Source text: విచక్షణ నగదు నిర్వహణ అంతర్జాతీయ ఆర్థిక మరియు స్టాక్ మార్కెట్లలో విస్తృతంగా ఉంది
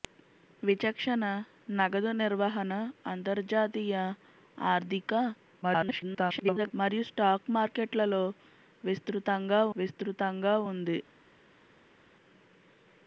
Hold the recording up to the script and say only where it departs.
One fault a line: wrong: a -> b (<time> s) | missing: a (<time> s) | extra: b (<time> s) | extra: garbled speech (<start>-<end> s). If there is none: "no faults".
extra: garbled speech (5.6-6.7 s)
extra: విస్తృతంగా (9.7 s)